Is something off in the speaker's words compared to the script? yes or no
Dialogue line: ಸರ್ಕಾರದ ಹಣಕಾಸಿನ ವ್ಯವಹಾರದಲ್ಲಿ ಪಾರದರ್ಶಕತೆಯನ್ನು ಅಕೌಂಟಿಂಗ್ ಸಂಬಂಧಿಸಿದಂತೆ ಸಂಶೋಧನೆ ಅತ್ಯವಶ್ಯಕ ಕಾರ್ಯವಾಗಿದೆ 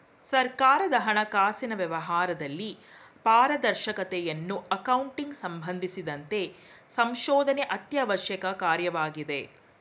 no